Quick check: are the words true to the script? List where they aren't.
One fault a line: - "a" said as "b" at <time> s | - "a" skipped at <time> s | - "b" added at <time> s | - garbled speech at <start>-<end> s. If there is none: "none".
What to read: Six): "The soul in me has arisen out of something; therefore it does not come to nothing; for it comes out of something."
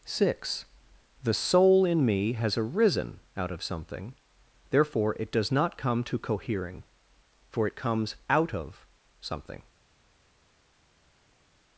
- "nothing" said as "cohering" at 6.2 s